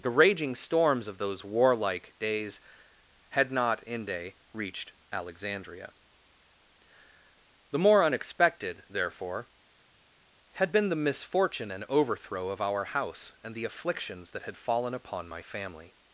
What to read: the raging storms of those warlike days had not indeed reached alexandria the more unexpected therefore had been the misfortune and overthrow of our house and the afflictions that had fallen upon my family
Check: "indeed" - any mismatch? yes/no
yes